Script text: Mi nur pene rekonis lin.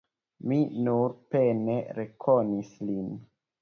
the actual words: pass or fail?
pass